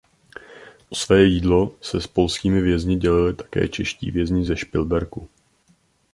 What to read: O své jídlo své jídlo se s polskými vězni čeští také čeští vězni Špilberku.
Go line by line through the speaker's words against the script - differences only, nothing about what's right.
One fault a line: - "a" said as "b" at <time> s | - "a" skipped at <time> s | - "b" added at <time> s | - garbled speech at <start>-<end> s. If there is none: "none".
- "své jídlo" skipped at 1.7 s
- "čeští" said as "dělili" at 3.0 s
- "ze" added at 4.4 s